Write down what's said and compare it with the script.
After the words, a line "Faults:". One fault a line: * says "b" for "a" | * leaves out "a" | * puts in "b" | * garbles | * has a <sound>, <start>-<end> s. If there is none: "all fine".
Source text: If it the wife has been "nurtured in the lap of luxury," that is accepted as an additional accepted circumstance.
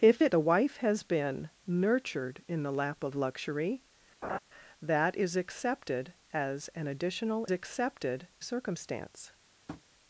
If it the wife has been "nurtured in the lap of luxury," that is accepted as an additional accepted circumstance.
Faults:
* has a laugh, 4.2-4.4 s
* has a tap, 9.7-9.8 s